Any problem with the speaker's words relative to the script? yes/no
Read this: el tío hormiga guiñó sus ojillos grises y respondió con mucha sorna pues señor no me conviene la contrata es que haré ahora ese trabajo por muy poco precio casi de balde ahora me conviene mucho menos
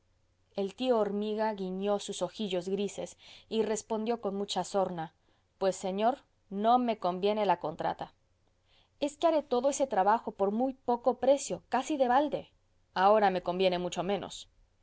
yes